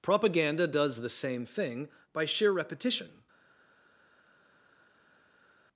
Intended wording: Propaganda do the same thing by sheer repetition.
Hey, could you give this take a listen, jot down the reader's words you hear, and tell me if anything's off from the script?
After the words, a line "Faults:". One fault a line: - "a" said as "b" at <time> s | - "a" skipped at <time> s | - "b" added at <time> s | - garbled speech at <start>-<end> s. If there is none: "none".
Propaganda does the same thing by sheer repetition.
Faults:
- "do" said as "does" at 0.7 s